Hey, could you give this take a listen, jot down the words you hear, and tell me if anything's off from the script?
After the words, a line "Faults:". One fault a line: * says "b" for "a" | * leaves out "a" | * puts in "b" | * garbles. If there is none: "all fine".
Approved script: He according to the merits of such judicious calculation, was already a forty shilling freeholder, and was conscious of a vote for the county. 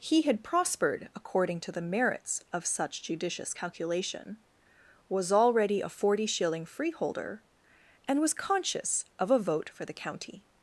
He had prospered according to the merits of such judicious calculation, was already a forty shilling freeholder, and was conscious of a vote for the county.
Faults:
* puts in "had prospered"